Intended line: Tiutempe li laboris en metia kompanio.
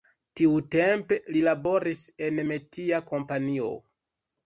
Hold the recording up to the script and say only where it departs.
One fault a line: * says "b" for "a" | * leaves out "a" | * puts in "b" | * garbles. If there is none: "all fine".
all fine